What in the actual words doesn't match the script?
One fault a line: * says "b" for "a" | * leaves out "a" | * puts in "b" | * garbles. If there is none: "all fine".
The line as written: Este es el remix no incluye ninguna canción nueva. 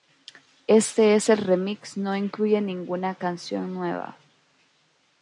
all fine